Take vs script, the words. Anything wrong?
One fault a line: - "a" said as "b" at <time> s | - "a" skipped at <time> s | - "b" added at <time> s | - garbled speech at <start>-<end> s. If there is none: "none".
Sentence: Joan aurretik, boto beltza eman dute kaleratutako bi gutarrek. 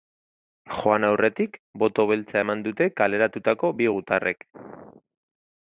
none